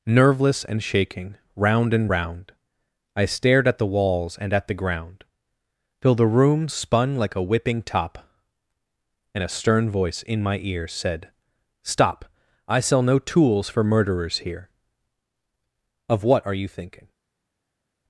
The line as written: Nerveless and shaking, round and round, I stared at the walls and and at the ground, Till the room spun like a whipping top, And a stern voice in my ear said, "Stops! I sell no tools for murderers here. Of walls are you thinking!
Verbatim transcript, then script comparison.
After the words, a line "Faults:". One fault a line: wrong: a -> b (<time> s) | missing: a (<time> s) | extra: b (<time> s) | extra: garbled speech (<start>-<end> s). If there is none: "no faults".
Nerveless and shaking, round and round, I stared at the walls and at the ground, Till the room spun like a whipping top, And a stern voice in my ear said, "Stop! I sell no tools for murderers here. Of what are you thinking!
Faults:
missing: and (4.5 s)
wrong: Stops -> Stop (11.8 s)
wrong: walls -> what (16.2 s)